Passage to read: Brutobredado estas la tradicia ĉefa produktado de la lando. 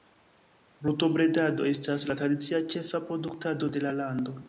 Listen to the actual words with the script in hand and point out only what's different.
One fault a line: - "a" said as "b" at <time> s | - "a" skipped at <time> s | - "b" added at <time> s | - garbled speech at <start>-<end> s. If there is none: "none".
none